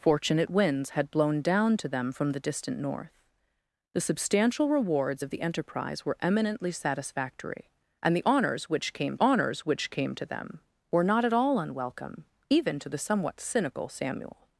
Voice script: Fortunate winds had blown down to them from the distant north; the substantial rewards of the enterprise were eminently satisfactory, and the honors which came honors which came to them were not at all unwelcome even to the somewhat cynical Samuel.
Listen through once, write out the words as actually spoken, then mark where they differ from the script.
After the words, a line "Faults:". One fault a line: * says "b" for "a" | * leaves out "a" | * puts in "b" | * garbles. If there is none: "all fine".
Fortunate winds had blown down to them from the distant north; the substantial rewards of the enterprise were eminently satisfactory, and the honors which came honors which came to them were not at all unwelcome even to the somewhat cynical Samuel.
Faults:
all fine